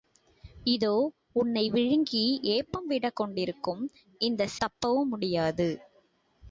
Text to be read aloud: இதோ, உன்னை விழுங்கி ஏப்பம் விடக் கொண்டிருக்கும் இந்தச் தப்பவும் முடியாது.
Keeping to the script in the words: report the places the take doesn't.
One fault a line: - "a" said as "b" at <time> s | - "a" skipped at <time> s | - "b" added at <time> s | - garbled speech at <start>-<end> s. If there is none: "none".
none